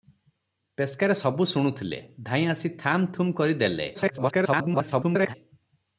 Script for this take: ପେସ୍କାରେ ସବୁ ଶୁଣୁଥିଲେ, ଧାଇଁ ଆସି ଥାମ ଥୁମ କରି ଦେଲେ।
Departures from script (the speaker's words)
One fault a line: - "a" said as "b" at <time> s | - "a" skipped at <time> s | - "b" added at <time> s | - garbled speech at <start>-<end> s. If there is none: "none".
- garbled speech at 3.9-5.3 s